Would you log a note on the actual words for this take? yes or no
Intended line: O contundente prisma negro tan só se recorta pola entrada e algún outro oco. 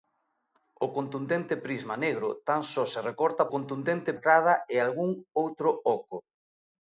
yes